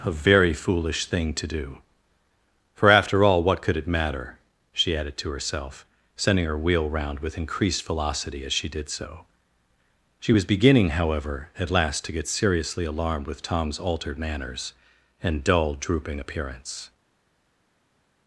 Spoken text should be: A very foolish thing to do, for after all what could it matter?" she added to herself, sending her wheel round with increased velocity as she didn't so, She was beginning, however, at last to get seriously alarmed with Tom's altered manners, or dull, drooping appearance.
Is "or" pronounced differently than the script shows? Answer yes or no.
yes